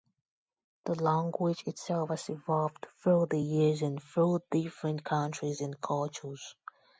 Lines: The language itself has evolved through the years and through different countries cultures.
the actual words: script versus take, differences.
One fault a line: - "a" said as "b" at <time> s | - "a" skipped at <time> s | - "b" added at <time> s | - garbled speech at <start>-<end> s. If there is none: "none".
- "and" added at 5.6 s